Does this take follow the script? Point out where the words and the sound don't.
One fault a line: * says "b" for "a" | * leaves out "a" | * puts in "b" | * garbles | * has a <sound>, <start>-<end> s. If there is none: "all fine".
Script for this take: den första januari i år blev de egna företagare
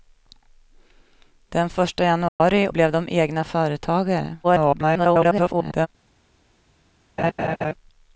* has a dropout, 2.3-2.4 s
* leaves out "år"
* garbles
* has a laugh, 7.2-7.7 s